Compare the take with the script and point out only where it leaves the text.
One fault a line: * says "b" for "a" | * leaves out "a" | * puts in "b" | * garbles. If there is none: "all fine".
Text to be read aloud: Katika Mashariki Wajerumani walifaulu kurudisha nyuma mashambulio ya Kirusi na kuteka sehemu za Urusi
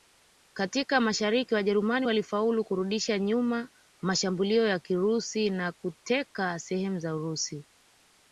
all fine